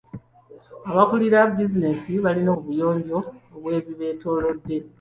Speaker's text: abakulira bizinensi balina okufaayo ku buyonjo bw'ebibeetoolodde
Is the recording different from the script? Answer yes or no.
yes